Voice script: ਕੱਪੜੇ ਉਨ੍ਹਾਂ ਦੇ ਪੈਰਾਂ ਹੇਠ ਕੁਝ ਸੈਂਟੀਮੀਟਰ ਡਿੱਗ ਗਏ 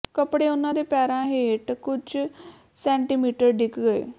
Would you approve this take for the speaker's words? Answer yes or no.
yes